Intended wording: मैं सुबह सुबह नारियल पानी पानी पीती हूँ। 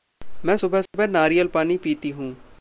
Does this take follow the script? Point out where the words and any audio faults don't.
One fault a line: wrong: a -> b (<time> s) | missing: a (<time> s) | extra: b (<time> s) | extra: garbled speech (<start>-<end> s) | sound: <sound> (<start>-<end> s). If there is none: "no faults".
sound: dropout (0.9-0.9 s)
missing: पानी (1.8 s)